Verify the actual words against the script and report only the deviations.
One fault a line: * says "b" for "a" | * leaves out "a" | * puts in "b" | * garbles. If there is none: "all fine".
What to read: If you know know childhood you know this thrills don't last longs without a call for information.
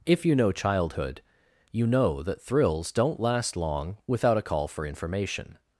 * leaves out "know"
* says "that" for "this"
* says "long" for "longs"